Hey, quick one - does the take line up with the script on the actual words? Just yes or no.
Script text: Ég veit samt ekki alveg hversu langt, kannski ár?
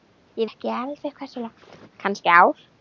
no